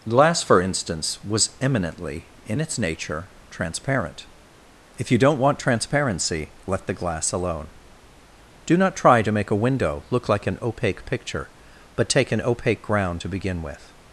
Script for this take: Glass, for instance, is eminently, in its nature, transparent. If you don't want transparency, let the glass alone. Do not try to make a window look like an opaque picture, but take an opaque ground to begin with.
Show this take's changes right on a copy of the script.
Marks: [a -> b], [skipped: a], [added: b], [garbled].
Glass, for instance, [is -> was] eminently, in its nature, transparent. If you don't want transparency, let the glass alone. Do not try to make a window look like an opaque picture, but take an opaque ground to begin with.